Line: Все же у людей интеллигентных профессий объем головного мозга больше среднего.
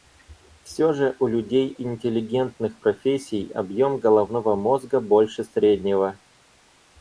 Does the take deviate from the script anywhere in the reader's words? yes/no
no